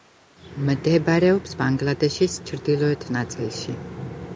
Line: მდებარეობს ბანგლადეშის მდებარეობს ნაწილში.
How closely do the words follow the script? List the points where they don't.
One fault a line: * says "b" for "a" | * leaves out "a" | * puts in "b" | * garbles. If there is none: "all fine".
* says "ჩრდილოეთ" for "მდებარეობს"